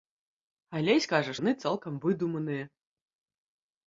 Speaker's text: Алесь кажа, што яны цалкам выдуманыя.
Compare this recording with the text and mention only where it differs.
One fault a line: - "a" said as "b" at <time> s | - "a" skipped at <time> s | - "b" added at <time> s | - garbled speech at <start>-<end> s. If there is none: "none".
- "што" skipped at 1.3 s